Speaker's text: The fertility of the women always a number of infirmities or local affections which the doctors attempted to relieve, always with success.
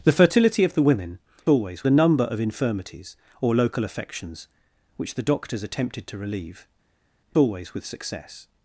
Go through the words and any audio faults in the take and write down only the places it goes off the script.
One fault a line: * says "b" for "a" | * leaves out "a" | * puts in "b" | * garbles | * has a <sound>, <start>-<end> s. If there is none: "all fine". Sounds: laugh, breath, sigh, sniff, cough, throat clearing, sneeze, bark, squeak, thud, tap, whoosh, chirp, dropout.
all fine